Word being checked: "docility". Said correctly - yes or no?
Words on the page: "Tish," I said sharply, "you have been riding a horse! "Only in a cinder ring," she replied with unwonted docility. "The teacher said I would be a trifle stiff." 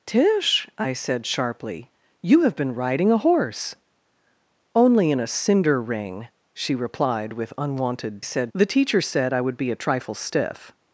no